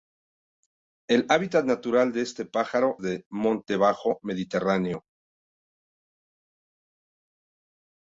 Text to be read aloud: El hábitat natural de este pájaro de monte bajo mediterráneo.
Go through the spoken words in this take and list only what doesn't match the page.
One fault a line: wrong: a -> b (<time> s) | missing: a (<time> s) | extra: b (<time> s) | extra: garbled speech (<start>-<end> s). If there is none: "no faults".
no faults